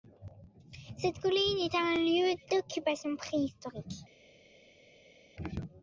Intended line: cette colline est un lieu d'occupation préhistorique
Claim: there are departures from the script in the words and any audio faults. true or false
false